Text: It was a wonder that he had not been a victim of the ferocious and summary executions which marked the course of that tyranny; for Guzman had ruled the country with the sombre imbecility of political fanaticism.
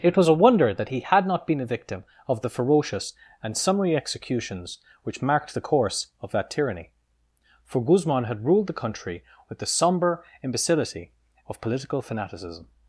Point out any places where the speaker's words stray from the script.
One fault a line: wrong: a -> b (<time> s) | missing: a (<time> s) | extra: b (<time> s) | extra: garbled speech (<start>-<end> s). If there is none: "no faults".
no faults